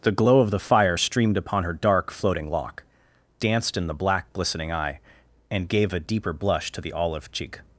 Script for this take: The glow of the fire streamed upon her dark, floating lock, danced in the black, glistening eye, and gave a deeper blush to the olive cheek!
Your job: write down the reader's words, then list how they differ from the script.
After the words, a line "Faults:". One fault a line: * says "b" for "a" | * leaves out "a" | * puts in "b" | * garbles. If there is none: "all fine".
The glow of the fire streamed upon her dark, floating lock, danced in the black, glistening eye, and gave a deeper blush to the olive cheek!
Faults:
all fine